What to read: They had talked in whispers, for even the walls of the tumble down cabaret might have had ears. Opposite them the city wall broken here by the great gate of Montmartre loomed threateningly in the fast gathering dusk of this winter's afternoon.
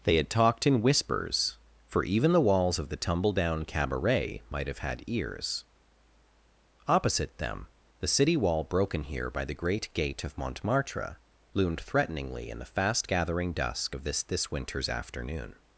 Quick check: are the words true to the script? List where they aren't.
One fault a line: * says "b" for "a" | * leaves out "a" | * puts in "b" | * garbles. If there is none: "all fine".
* puts in "this"